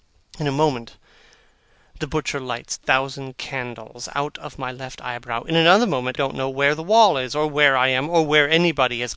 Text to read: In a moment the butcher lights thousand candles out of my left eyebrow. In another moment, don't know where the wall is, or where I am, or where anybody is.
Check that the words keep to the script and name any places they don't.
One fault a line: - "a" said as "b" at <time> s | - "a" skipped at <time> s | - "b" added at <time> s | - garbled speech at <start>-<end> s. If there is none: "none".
none